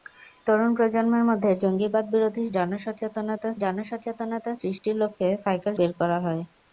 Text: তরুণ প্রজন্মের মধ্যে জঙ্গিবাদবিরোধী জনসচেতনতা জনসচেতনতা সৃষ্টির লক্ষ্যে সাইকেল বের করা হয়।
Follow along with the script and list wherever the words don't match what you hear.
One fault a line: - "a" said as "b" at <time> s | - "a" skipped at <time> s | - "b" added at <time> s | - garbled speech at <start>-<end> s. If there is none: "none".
none